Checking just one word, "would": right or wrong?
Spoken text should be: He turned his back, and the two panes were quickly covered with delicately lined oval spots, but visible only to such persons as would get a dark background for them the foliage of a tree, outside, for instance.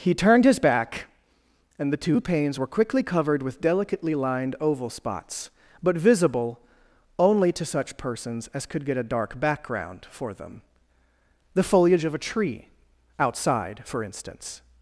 wrong